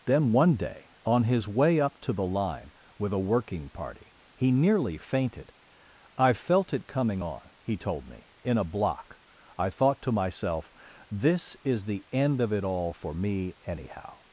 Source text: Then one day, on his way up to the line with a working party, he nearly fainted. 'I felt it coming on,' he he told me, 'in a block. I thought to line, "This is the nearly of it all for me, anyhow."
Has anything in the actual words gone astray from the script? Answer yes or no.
yes